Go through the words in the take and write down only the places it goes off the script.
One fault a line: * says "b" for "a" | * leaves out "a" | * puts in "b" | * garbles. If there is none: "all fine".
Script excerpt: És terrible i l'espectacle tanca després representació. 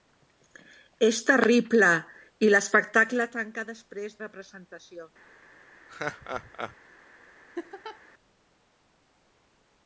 all fine